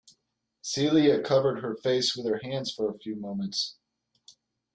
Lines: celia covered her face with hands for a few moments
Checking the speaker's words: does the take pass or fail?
fail